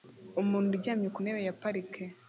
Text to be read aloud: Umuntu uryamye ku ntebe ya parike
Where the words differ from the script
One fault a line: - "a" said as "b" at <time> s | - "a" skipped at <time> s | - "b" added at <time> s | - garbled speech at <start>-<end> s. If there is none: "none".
none